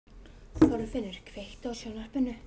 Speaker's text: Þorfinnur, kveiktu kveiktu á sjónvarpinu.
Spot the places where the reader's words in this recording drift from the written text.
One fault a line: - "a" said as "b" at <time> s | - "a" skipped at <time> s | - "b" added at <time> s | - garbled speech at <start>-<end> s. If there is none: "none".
- "kveiktu" skipped at 1.7 s